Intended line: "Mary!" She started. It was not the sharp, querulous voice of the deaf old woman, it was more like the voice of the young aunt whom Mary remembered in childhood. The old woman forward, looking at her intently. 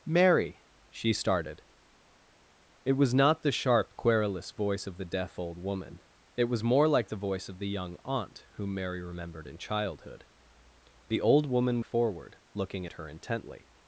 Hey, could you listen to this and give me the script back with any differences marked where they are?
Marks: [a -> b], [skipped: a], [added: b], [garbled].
"Mary!" She started. It was not the sharp, querulous voice of the deaf old woman, it was more like the voice of the young aunt whom Mary remembered in childhood. The old woman forward, looking at her intently.